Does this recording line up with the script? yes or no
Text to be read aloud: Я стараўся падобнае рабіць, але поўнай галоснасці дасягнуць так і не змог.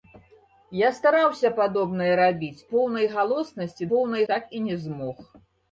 no